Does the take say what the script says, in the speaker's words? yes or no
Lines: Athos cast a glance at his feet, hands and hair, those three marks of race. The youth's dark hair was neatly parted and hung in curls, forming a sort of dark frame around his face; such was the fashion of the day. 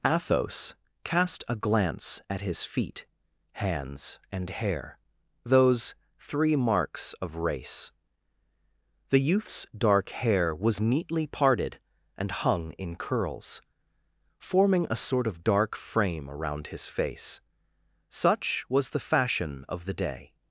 yes